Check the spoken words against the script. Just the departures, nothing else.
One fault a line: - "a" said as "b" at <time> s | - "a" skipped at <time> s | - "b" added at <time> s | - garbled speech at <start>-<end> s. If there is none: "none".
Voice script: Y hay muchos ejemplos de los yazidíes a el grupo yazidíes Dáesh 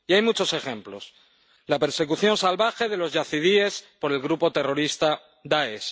- "la persecución salvaje" added at 1.7 s
- "a" said as "por" at 4.0 s
- "yazidíes" said as "terrorista" at 4.5 s